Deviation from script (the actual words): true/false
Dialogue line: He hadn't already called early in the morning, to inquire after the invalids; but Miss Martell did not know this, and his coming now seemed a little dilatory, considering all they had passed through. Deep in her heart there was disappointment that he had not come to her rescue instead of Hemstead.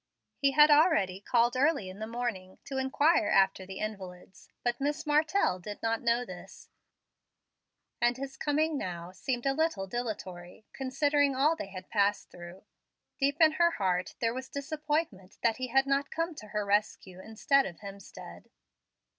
true